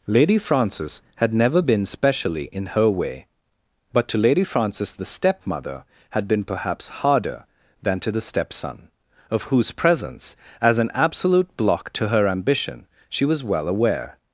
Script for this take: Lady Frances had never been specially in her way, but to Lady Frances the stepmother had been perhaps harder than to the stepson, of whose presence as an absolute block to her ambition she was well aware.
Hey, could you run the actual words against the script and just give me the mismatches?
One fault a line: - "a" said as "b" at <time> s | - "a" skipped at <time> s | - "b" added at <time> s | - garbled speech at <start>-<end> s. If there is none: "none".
none